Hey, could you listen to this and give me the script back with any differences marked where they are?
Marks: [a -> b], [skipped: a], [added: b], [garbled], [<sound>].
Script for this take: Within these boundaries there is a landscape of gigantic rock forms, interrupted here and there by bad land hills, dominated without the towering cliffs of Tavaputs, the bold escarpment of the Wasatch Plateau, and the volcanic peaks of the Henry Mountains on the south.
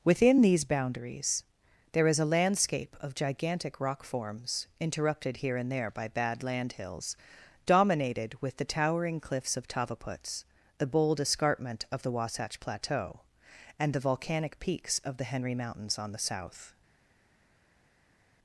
Within these boundaries there is a landscape of gigantic rock forms, interrupted here and there by bad land hills, dominated [without -> with] the towering cliffs of Tavaputs, the bold escarpment of the Wasatch Plateau, and the volcanic peaks of the Henry Mountains on the south.